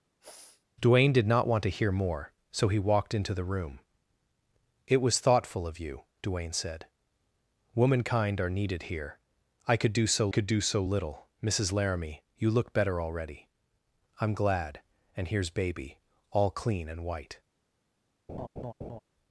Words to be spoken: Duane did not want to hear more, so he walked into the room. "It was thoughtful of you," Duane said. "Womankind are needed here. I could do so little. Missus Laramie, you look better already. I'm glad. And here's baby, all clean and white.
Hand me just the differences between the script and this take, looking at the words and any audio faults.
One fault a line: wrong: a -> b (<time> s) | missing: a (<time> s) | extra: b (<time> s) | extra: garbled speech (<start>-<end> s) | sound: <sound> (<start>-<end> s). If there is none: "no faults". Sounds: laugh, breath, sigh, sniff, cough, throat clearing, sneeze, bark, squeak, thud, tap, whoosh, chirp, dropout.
sound: sniff (0.2-0.6 s)
extra: could do so (10.3 s)
sound: laugh (18.3-19.0 s)